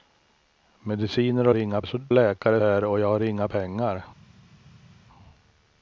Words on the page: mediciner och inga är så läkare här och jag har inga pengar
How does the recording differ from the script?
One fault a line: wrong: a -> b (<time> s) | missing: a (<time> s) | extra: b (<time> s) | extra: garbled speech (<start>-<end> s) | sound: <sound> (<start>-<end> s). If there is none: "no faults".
no faults